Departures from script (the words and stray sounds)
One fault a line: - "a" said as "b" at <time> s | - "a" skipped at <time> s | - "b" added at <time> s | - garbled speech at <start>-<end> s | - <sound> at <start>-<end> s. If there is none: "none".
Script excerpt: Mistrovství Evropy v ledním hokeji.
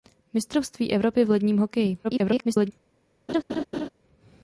- garbled speech at 2.0-2.7 s
- laugh at 3.3-3.9 s